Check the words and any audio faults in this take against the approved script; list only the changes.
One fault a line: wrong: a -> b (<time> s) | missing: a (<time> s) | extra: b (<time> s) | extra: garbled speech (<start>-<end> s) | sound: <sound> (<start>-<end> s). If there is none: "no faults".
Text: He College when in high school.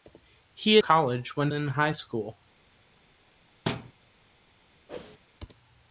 sound: thud (3.7-3.9 s)
sound: whoosh (4.9-5.2 s)